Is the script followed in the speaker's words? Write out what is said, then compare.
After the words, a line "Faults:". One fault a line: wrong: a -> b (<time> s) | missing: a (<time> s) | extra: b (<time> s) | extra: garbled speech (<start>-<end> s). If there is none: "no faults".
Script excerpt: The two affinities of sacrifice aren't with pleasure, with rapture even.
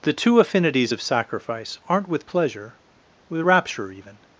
The two affinities of sacrifice aren't with pleasure, with rapture even.
Faults:
no faults